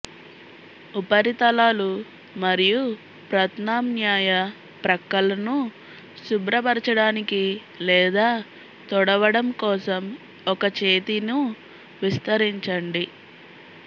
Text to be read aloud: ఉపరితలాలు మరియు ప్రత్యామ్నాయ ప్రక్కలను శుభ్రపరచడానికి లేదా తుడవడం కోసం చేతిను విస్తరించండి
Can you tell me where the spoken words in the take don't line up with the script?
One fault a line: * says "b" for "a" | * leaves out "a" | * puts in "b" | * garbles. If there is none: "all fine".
* puts in "ఒక"